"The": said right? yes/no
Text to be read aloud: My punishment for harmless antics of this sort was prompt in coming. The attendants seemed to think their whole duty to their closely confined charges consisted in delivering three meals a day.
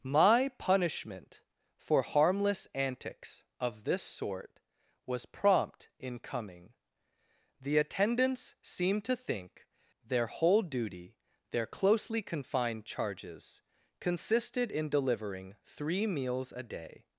yes